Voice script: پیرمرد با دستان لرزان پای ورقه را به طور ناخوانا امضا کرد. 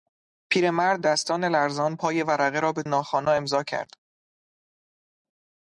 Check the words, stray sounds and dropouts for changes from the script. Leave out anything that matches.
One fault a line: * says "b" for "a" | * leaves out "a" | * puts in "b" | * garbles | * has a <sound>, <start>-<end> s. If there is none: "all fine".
* leaves out "با"
* leaves out "طور"